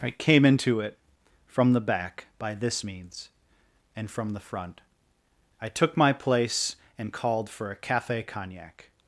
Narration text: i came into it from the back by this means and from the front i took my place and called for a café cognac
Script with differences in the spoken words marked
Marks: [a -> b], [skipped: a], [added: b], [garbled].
i came into it from the back by this means and from the front i took my place and called for a café cognac